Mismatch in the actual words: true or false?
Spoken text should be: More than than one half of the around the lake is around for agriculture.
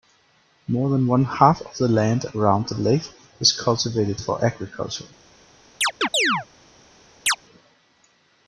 true